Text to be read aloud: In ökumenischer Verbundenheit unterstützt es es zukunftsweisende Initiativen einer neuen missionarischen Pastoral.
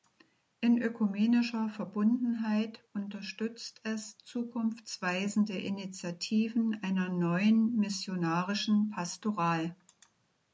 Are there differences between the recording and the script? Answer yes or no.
yes